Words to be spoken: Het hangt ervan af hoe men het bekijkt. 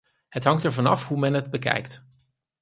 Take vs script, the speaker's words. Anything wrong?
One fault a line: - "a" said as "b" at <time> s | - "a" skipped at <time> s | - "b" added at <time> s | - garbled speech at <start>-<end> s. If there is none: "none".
none